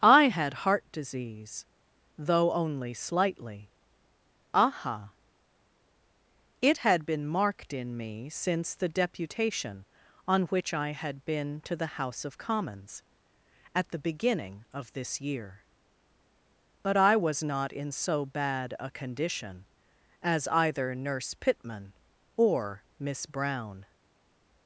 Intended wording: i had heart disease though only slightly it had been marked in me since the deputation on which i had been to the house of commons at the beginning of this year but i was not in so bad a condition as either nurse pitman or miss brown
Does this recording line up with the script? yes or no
no